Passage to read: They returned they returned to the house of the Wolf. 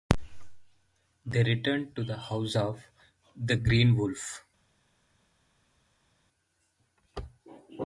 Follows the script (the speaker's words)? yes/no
no